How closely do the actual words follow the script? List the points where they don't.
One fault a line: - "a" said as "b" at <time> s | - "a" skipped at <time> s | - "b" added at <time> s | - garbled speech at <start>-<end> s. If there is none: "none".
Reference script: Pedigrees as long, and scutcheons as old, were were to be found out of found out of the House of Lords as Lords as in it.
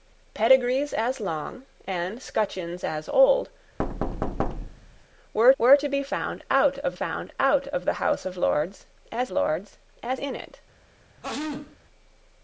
none